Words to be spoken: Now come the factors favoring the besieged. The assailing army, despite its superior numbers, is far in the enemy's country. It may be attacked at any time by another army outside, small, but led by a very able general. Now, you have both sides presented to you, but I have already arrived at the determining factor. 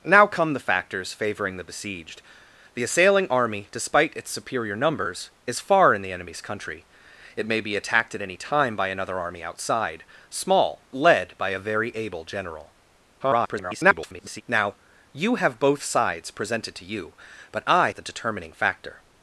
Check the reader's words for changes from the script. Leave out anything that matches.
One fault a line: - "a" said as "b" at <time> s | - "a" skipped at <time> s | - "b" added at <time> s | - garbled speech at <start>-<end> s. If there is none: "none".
- "but" skipped at 10.8 s
- garbled speech at 13.2-14.4 s
- "have already arrived" skipped at 17.9 s